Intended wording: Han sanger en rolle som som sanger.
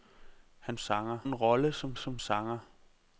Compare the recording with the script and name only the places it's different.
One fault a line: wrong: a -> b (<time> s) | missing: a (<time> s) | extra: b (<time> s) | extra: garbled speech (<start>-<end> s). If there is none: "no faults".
no faults